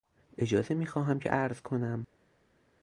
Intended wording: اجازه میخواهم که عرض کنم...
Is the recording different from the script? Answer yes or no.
no